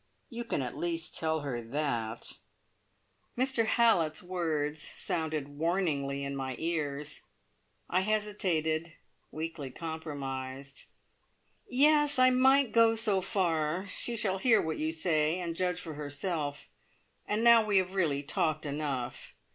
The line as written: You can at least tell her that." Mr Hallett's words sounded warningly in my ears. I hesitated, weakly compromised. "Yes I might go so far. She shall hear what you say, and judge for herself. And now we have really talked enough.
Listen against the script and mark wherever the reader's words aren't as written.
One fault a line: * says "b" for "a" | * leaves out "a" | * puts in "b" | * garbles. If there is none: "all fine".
all fine